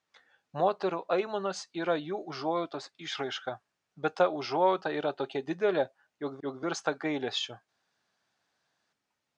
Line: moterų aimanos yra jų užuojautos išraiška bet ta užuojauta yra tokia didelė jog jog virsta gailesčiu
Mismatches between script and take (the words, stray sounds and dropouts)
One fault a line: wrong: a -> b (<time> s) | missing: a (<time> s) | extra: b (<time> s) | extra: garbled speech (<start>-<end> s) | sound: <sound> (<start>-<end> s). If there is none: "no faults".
no faults